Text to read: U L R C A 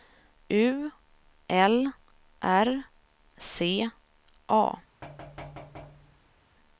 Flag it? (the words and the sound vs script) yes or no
yes